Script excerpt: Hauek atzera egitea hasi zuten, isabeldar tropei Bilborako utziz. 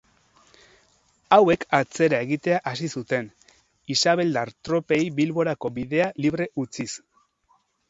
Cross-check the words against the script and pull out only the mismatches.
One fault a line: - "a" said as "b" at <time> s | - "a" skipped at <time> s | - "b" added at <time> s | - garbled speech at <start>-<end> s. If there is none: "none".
- "bidea libre" added at 5.8 s